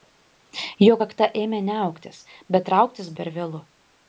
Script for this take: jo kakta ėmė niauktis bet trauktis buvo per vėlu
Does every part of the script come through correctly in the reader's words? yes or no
no